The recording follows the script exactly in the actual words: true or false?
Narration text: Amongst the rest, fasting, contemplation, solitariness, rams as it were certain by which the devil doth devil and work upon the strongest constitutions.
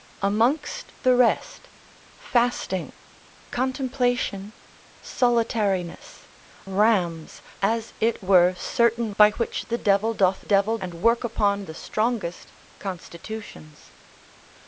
true